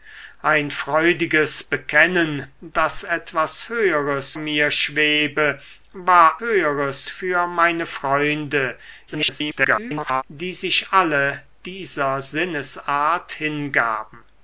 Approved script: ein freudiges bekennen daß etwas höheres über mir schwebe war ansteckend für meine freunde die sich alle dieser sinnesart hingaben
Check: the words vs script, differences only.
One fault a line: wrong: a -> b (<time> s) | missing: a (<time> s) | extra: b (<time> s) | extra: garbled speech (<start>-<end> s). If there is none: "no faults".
missing: über (4.3 s)
wrong: ansteckend -> höheres (6.4 s)
extra: garbled speech (9.1-10.2 s)